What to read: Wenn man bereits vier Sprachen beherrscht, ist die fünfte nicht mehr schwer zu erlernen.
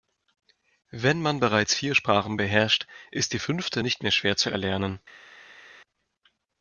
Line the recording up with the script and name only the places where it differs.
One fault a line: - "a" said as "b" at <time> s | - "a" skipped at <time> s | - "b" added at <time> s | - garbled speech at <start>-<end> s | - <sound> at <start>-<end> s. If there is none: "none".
none